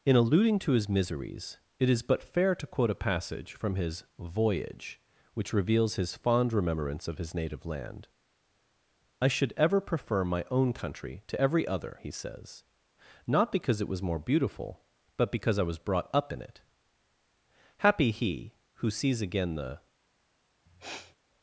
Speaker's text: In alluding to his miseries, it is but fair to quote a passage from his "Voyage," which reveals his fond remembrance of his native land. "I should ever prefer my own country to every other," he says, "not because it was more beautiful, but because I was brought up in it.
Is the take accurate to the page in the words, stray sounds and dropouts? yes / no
no